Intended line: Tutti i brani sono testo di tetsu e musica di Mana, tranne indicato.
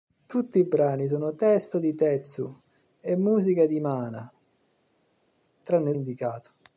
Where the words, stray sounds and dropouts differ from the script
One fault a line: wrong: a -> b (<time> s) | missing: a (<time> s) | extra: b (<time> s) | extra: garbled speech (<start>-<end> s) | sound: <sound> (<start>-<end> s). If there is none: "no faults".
no faults